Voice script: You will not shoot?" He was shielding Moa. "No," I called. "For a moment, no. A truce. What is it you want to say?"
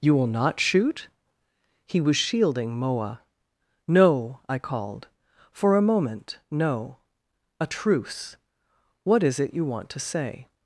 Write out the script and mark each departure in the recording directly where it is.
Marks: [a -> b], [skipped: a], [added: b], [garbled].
You will not shoot?" He was shielding Moa. "No," I called. "For a moment, no. A truce. What is it you want to say?"